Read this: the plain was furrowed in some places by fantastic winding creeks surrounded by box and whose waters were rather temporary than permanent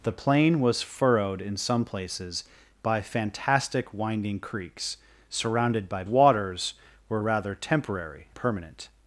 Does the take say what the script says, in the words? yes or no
no